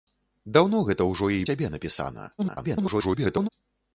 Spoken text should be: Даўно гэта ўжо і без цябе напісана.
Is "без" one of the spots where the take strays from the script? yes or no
yes